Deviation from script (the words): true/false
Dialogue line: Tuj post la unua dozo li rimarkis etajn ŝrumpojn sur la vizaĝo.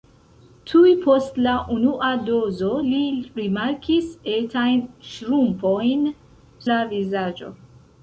true